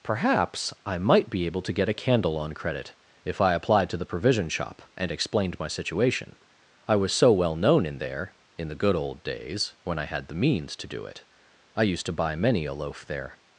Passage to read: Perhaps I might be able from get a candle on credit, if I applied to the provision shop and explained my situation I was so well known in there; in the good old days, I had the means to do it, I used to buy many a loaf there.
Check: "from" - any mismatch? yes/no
yes